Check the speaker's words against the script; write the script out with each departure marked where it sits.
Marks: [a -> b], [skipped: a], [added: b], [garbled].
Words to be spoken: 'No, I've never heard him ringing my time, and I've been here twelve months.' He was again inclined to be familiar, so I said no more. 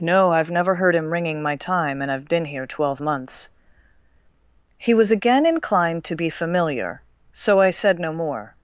'No, I've never heard him ringing my time, and I've been here twelve months.' He was again inclined to be familiar, so I said no more.